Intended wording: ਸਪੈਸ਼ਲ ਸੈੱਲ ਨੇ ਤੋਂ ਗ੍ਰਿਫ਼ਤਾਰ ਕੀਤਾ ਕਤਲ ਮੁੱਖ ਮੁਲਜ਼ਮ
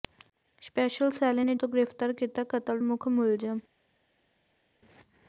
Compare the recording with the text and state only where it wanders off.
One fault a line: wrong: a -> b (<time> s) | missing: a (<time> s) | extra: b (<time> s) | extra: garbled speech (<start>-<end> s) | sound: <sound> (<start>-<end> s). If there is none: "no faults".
no faults